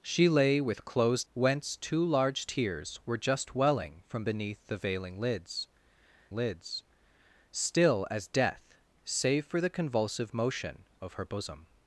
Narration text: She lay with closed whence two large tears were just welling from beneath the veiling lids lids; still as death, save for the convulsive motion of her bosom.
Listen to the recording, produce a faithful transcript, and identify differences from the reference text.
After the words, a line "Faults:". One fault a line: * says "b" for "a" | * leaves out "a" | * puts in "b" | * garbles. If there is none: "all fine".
She lay with closed whence two large tears were just welling from beneath the veiling lids lids; still as death, save for the convulsive motion of her bosom.
Faults:
all fine